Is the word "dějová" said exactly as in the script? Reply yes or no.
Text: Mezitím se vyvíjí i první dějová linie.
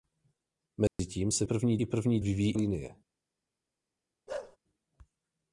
no